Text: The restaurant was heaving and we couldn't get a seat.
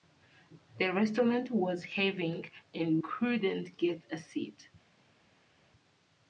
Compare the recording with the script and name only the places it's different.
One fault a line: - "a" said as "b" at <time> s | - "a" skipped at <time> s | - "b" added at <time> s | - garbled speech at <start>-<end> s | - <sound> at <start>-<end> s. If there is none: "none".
- "we" skipped at 3.0 s